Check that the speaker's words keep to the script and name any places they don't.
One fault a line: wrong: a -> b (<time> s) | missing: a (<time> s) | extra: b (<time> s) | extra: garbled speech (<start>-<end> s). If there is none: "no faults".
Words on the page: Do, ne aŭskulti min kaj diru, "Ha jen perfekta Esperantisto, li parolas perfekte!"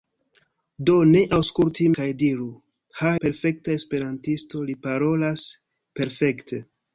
missing: min (1.9 s)
missing: jen (3.1 s)